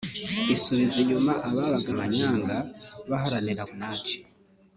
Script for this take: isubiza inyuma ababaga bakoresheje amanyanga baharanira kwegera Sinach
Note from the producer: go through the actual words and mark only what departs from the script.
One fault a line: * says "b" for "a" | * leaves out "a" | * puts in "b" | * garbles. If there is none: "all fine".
* leaves out "bakoresheje"
* leaves out "kwegera"